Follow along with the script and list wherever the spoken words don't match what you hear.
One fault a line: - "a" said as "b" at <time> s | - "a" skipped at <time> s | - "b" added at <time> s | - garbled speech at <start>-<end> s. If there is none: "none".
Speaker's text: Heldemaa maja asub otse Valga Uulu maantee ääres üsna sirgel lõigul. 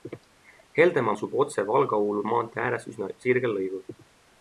- "maja" skipped at 1.1 s